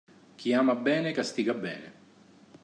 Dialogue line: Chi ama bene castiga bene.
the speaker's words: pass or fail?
pass